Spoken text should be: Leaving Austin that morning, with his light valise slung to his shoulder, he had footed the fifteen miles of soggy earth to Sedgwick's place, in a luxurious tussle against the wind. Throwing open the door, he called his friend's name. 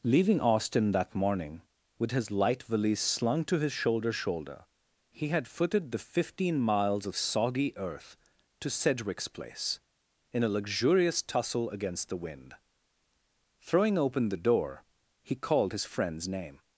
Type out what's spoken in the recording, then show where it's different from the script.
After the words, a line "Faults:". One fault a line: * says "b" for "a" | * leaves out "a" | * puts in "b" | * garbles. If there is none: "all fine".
Leaving Austin that morning, with his light valise slung to his shoulder shoulder, he had footed the fifteen miles of soggy earth to Sedgwick's place, in a luxurious tussle against the wind. Throwing open the door, he called his friend's name.
Faults:
* puts in "shoulder"